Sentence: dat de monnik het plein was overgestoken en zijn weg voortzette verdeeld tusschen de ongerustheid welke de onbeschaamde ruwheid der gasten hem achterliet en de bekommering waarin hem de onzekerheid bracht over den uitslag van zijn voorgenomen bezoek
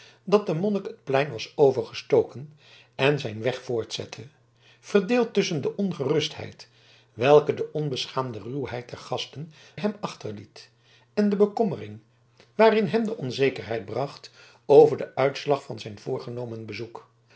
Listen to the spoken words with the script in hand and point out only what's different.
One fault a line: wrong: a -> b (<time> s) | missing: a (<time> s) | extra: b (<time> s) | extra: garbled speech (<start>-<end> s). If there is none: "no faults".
no faults